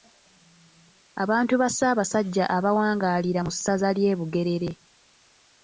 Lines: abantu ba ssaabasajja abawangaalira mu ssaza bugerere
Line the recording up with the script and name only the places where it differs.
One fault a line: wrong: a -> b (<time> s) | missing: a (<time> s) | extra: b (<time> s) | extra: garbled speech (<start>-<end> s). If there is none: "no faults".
extra: ly'e (4.0 s)